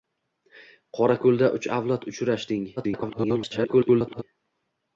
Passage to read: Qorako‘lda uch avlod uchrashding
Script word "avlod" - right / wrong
right